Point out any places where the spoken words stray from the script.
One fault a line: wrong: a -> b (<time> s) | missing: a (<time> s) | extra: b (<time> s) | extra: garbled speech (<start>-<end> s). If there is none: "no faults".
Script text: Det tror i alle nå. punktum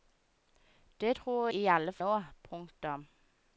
no faults